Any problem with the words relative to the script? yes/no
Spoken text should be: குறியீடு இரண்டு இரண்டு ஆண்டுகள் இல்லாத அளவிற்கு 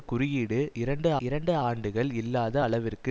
no